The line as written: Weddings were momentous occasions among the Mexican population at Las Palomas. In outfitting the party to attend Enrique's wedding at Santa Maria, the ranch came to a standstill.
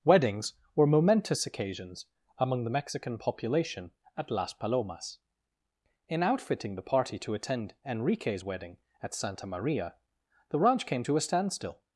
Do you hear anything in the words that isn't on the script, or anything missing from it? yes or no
no